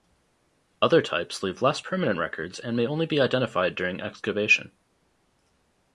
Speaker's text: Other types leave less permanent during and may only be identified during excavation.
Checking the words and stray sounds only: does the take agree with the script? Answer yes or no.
no